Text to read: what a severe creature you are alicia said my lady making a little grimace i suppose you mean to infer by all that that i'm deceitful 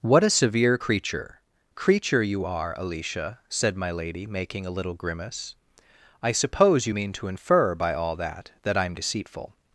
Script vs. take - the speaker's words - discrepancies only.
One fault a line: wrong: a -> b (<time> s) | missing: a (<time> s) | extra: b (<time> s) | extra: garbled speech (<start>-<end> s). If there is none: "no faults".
extra: creature (1.7 s)